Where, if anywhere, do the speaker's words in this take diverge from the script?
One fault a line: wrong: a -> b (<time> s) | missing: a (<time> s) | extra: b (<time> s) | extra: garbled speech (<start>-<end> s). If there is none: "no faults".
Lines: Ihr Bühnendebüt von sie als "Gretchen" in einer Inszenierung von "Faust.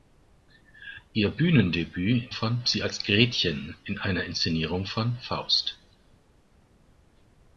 no faults